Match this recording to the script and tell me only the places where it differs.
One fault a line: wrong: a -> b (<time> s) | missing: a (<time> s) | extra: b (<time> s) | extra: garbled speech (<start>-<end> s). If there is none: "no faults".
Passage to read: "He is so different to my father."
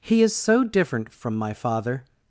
wrong: to -> from (1.1 s)